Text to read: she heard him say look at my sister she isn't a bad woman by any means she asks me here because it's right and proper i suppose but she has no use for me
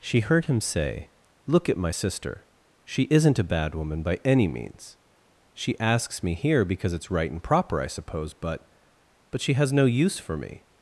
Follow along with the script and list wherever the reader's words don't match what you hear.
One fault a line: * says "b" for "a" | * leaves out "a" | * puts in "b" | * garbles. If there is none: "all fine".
* puts in "but"